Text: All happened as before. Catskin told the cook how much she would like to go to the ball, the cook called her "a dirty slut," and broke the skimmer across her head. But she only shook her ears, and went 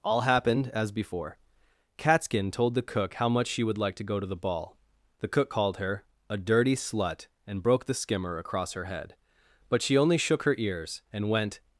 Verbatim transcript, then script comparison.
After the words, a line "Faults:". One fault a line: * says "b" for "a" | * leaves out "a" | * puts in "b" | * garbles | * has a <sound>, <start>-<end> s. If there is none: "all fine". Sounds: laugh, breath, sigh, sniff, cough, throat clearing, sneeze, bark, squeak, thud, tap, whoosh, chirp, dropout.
All happened as before. Catskin told the cook how much she would like to go to the ball, the cook called her "a dirty slut," and broke the skimmer across her head. But she only shook her ears, and went
Faults:
all fine